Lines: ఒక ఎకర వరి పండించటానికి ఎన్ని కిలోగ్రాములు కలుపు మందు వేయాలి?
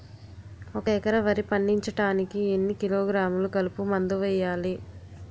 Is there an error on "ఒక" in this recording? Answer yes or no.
no